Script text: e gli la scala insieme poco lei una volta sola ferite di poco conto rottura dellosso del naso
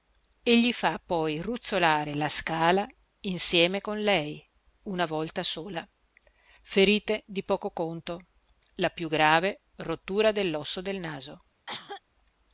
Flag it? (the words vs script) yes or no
yes